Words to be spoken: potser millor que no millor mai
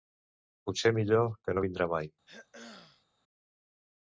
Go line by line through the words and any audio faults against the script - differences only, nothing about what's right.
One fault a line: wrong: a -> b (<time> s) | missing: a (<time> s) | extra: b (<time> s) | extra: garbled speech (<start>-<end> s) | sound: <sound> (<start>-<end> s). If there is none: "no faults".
wrong: millor -> vindrà (1.7 s)
sound: throat clearing (2.3-3.1 s)